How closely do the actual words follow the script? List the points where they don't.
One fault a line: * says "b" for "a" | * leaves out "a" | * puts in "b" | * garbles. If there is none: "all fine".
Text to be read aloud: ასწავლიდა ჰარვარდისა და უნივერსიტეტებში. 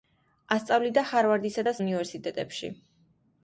all fine